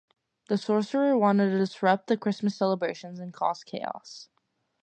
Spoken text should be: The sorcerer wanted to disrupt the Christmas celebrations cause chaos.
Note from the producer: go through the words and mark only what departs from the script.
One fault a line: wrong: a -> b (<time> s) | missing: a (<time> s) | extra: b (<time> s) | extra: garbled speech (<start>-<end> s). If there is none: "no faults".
extra: and (3.2 s)